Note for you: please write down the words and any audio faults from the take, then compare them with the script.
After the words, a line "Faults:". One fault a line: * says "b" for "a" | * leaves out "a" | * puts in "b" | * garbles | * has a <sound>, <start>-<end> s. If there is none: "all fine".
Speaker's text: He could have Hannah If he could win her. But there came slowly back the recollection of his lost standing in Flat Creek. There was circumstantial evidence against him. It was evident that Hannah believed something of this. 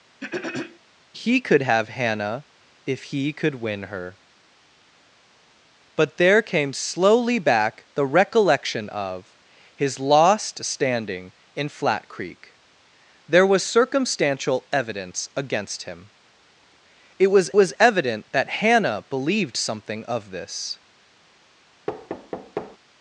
He could have Hannah If he could win her. But there came slowly back the recollection of his lost standing in Flat Creek. There was circumstantial evidence against him. It was was evident that Hannah believed something of this.
Faults:
* has a throat clearing, 0.2-0.8 s
* puts in "was"
* has a thud, 21.9-22.8 s